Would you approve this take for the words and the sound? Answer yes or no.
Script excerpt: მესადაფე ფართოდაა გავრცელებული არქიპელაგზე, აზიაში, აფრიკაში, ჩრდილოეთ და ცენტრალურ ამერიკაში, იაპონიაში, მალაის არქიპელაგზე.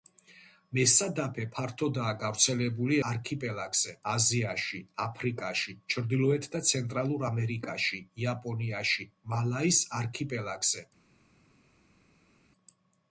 yes